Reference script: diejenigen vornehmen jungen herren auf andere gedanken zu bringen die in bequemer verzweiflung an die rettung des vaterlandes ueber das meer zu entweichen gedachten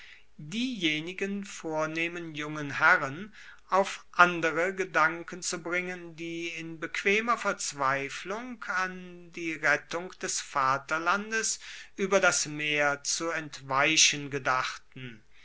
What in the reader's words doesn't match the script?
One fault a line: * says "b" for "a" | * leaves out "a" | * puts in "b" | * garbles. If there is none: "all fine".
all fine